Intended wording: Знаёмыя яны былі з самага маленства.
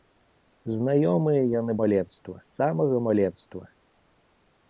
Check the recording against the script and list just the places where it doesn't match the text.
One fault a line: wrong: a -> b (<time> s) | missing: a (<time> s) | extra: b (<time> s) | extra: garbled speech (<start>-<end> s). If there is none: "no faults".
wrong: былі -> маленства (1.8 s)